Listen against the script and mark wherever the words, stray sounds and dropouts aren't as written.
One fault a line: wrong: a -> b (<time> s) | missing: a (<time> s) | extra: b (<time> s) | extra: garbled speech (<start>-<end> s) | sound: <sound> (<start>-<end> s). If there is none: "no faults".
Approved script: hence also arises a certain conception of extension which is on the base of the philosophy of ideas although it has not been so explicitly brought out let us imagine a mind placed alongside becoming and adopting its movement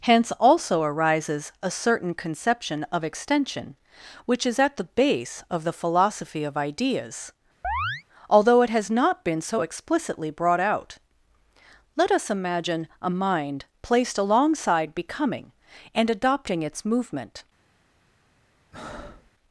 wrong: on -> at (4.6 s)
sound: chirp (7.6-8.0 s)
sound: breath (18.7-19.3 s)